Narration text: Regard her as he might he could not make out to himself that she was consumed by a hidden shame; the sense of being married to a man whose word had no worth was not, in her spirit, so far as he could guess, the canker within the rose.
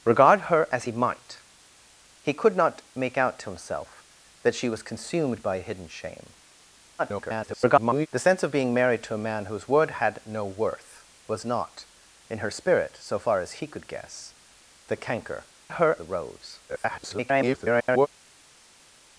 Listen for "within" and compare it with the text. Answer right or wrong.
wrong